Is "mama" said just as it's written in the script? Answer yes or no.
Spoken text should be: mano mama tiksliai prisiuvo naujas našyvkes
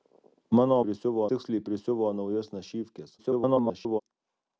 no